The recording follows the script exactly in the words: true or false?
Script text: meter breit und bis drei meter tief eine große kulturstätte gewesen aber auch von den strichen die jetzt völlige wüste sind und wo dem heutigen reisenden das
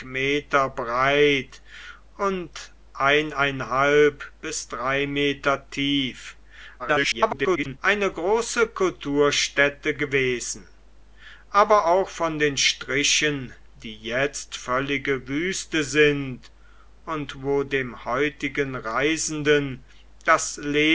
false